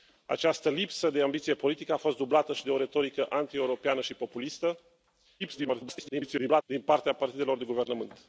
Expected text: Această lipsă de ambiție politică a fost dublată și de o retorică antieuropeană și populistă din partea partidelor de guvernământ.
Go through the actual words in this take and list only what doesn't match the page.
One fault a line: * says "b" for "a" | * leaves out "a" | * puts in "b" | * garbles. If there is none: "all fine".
* garbles